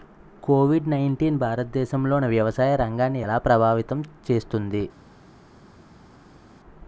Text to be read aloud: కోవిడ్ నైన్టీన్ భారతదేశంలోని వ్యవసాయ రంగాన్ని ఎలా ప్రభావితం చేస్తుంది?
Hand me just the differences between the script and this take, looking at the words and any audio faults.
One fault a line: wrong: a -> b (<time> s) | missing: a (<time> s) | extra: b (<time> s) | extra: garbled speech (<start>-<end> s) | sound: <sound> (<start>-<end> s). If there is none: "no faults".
no faults